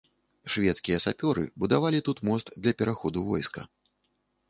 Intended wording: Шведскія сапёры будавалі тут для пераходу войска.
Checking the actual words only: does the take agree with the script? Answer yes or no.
no